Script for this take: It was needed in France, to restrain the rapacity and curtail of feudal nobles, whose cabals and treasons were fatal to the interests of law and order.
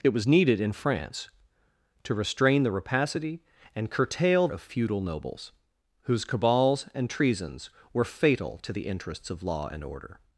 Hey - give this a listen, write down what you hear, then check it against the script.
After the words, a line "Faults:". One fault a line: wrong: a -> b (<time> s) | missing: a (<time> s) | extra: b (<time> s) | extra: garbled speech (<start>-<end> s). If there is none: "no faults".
It was needed in France, to restrain the rapacity and curtail of feudal nobles, whose cabals and treasons were fatal to the interests of law and order.
Faults:
no faults